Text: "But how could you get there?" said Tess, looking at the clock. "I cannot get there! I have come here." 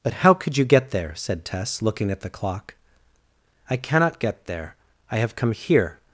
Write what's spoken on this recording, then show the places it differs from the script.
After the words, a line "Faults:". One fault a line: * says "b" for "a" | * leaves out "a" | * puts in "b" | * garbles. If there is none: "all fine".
"But how could you get there?" said Tess, looking at the clock. "I cannot get there! I have come here."
Faults:
all fine